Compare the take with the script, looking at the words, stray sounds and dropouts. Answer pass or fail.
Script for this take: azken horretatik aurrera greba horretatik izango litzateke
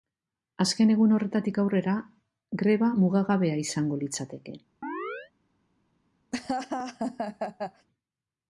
fail